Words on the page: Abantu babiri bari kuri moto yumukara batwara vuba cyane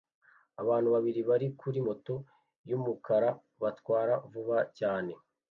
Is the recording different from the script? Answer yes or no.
no